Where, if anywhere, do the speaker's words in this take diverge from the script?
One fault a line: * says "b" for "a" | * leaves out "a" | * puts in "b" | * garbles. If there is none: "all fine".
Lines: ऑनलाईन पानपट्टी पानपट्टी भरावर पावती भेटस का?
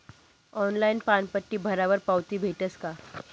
* leaves out "पानपट्टी"